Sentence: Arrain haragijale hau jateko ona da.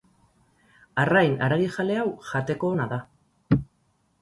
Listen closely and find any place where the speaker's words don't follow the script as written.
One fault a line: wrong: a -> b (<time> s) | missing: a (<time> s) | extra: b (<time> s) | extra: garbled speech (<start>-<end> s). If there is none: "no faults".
no faults